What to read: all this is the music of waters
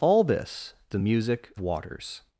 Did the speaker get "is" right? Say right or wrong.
wrong